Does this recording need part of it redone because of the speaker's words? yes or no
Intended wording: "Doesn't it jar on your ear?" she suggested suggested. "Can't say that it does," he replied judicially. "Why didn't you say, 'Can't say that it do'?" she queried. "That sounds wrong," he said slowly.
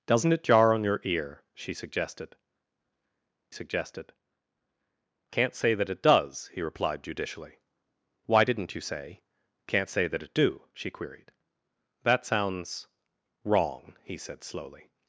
no